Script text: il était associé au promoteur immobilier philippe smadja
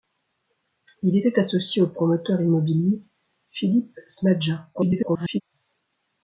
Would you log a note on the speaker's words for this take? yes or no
yes